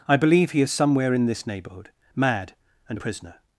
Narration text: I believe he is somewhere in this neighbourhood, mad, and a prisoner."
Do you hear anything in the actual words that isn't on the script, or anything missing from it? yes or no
no